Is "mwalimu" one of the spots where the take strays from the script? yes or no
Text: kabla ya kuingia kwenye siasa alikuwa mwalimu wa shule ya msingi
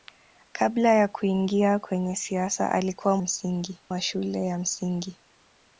yes